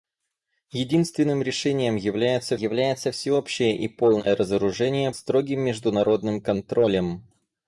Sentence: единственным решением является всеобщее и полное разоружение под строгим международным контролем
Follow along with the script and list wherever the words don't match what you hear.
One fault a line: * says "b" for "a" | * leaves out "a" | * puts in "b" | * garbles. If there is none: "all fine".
* puts in "является"
* leaves out "под"